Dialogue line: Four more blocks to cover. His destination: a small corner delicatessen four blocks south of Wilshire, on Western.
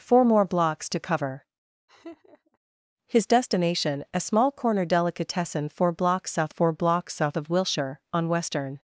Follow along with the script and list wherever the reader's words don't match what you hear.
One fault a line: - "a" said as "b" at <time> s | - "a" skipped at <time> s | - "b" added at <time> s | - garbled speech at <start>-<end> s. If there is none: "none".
- "four blocks south" added at 6.5 s